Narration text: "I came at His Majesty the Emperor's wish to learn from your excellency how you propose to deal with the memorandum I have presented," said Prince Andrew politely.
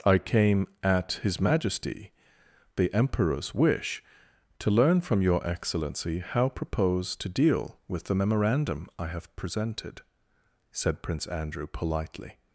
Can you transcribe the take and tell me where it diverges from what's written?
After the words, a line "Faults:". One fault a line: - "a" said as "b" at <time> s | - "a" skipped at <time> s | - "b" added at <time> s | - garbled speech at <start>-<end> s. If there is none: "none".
"I came at His Majesty the Emperor's wish to learn from your excellency how propose to deal with the memorandum I have presented," said Prince Andrew politely.
Faults:
- "you" skipped at 6.5 s